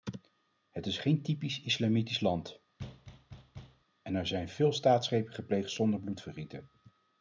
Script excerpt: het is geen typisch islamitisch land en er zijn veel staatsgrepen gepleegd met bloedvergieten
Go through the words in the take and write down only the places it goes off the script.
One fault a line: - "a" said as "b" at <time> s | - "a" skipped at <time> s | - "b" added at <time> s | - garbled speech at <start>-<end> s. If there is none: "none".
- "met" said as "zonder" at 5.7 s